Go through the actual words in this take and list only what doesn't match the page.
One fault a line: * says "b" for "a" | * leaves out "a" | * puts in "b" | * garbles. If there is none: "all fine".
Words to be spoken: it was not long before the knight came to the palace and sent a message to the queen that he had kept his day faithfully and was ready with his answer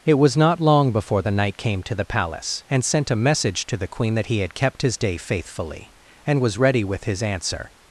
all fine